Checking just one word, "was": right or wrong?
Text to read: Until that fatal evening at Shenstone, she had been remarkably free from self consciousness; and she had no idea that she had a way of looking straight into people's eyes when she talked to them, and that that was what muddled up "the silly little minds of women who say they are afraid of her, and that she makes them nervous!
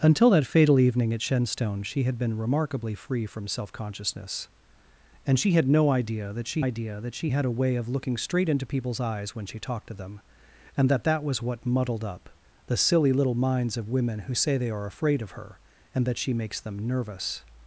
right